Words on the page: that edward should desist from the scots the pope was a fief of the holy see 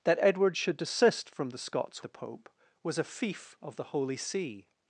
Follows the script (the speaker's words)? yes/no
yes